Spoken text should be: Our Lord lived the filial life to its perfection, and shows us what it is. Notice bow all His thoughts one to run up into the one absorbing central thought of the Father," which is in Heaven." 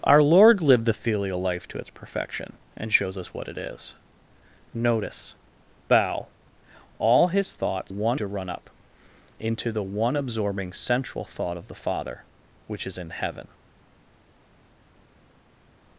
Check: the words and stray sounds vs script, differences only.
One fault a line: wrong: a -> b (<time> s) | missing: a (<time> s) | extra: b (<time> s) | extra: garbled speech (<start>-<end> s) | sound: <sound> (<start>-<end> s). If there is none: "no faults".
no faults